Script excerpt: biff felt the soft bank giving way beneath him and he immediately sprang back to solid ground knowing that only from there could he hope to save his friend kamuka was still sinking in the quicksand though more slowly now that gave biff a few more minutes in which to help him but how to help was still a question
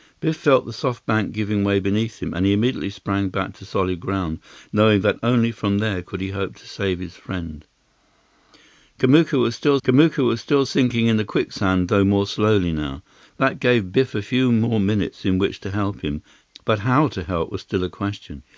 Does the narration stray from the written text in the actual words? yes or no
yes